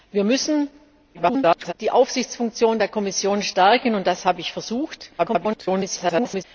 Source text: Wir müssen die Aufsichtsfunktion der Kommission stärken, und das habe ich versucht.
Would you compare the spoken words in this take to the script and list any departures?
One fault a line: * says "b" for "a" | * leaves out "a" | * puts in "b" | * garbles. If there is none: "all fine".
* garbles
* garbles